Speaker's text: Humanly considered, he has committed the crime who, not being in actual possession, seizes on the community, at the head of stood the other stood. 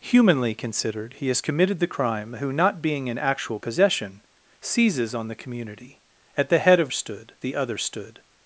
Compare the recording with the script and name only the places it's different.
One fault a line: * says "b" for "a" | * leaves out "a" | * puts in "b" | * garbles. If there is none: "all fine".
all fine